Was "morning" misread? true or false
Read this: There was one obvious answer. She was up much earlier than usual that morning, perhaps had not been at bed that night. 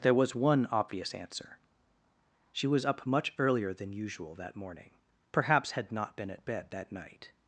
false